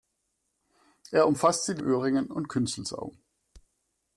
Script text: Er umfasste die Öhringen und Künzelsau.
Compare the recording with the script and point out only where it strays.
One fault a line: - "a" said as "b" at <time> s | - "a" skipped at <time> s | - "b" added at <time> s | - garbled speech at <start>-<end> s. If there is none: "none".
none